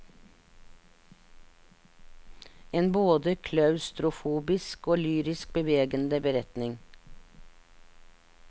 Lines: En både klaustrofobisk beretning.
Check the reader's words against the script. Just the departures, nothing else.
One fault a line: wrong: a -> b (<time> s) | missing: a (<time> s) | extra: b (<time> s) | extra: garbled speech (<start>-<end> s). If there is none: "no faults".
extra: og lyrisk bevegende (4.9 s)